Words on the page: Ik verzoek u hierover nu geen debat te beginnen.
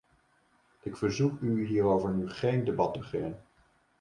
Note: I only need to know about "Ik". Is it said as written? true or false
true